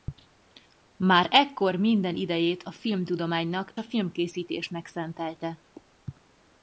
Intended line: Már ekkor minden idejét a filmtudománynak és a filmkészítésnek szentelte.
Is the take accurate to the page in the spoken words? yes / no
no